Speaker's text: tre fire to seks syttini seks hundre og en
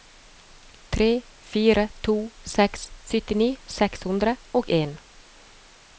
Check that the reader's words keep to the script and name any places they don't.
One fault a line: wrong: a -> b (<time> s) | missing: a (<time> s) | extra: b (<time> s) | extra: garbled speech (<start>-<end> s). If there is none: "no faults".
no faults